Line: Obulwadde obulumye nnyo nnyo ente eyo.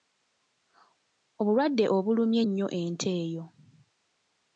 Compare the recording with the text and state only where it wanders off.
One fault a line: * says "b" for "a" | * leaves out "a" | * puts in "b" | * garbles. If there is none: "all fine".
* leaves out "nnyo"